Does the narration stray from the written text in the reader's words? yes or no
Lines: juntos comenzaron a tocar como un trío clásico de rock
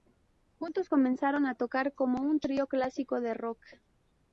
no